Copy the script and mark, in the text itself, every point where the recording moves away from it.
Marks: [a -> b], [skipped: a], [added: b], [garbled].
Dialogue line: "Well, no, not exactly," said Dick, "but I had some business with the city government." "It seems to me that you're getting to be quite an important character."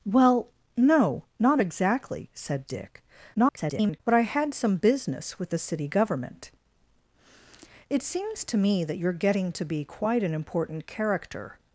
"Well, no, not exactly," said Dick, [garbled] "but I had some business with the city government." "It seems to me that you're getting to be quite an important character."